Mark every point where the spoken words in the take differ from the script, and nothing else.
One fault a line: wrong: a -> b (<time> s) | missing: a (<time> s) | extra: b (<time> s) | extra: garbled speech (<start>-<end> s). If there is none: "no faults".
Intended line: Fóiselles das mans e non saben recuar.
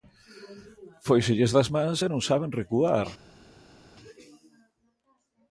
no faults